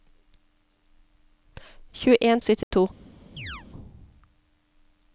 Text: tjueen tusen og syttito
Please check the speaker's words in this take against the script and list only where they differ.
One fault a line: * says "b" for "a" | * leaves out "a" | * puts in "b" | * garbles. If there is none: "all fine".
* leaves out "tusen"